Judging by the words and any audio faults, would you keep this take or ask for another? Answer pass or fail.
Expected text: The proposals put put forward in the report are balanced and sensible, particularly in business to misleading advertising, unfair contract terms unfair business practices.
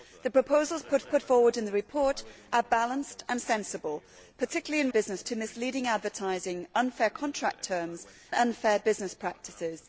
pass